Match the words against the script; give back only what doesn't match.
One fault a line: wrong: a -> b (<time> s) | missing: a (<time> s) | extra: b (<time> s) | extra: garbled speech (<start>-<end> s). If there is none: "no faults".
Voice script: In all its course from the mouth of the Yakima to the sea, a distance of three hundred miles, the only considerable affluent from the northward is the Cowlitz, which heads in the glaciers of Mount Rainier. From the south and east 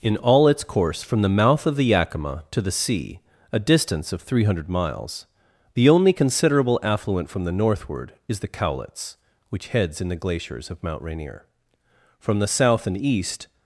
no faults